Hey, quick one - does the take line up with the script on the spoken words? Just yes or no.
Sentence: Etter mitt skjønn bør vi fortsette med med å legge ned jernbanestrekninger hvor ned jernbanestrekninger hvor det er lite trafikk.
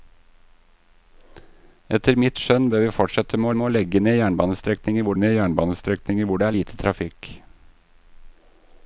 yes